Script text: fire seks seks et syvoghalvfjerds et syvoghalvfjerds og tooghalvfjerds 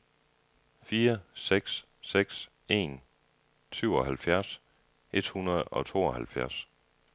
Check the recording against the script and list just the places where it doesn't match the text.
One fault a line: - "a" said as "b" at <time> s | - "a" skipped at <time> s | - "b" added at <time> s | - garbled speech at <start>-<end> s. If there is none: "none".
- "et" said as "en" at 2.7 s
- "syvoghalvfjerds" said as "hundrede" at 5.3 s